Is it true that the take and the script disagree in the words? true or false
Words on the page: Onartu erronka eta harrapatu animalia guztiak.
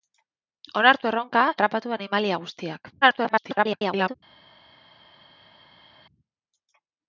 true